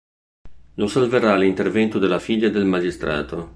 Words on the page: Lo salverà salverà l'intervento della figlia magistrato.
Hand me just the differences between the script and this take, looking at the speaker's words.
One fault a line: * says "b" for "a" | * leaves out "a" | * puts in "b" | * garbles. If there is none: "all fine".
* leaves out "salverà"
* puts in "del"